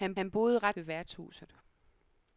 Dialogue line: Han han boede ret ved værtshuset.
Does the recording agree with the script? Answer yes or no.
yes